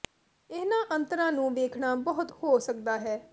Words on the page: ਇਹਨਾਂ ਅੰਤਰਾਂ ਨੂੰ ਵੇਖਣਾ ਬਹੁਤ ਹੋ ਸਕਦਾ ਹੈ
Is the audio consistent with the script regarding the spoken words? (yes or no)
yes